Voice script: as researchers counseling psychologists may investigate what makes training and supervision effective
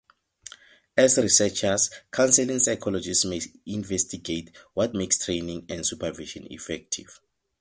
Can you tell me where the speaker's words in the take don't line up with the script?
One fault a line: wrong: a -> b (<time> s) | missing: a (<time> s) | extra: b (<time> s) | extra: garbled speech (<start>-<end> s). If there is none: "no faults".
no faults